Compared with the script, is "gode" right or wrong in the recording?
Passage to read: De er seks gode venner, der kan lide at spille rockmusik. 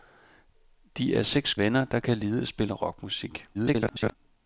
wrong